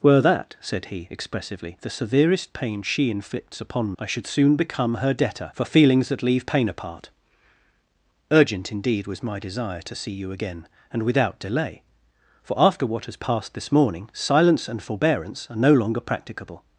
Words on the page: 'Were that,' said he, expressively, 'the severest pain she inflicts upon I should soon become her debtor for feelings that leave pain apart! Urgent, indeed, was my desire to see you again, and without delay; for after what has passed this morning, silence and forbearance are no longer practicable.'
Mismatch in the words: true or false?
false